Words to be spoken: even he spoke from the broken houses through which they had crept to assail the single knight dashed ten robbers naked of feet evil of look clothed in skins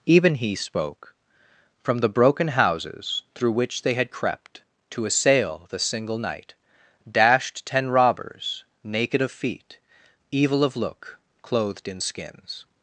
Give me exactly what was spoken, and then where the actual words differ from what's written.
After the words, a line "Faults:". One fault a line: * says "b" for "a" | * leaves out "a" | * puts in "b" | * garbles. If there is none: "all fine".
even he spoke from the broken houses through which they had crept to assail the single knight dashed ten robbers naked of feet evil of look clothed in skins
Faults:
all fine